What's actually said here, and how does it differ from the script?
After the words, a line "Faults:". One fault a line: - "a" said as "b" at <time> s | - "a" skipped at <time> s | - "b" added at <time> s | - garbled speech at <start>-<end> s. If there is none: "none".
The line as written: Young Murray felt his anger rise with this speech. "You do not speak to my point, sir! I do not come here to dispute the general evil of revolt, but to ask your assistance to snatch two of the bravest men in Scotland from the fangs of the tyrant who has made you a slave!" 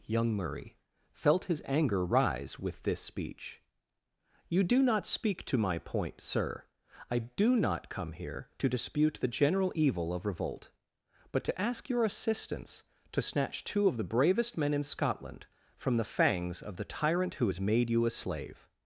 Young Murray felt his anger rise with this speech. "You do not speak to my point, sir! I do not come here to dispute the general evil of revolt, but to ask your assistance to snatch two of the bravest men in Scotland from the fangs of the tyrant who has made you a slave!"
Faults:
none